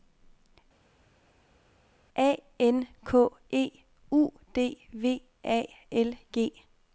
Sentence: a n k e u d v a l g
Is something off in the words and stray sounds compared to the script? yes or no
no